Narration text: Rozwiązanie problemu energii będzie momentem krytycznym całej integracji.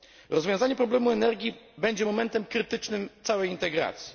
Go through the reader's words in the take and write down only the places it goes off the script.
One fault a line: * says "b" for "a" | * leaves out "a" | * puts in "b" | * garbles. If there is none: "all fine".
all fine